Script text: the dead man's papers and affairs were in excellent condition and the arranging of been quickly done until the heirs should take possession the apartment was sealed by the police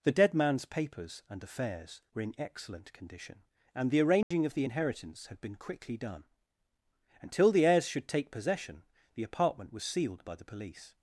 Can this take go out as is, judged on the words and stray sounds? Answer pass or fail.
fail